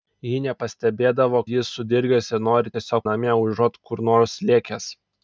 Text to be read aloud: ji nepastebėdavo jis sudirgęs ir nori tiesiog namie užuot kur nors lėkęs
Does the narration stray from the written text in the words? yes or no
no